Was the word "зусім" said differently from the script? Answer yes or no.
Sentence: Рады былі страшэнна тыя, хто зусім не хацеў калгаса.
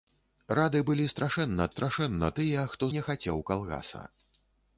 yes